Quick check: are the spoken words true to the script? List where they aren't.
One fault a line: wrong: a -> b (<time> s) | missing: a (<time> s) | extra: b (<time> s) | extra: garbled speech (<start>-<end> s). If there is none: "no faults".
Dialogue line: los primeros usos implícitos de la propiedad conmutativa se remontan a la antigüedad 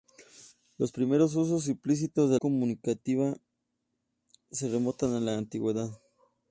missing: la propiedad (2.4 s)